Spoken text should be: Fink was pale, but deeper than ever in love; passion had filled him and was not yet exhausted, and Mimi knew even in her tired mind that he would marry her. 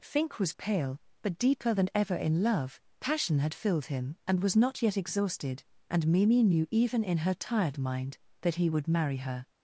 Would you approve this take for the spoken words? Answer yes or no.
yes